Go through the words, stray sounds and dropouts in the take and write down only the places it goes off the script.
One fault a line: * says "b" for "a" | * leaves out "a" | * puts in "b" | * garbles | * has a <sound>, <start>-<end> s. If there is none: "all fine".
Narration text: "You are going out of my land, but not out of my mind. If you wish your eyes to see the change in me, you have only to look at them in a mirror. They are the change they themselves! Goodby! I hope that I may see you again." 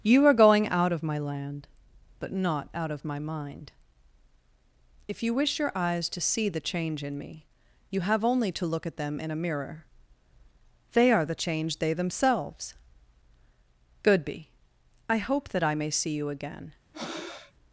* has a breath, 16.9-17.5 s